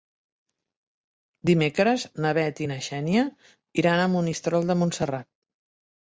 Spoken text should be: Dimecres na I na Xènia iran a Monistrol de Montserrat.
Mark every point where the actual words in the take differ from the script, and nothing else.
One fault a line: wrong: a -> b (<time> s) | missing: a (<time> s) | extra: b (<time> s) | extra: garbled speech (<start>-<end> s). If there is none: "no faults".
extra: Bet (2.4 s)